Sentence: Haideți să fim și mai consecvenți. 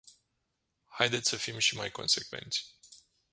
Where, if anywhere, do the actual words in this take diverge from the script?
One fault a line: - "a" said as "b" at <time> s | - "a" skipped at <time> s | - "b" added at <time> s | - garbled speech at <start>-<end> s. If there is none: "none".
none